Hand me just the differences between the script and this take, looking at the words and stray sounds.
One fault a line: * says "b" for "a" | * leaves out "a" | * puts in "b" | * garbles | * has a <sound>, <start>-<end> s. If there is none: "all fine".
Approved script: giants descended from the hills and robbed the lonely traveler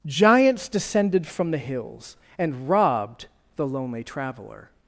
all fine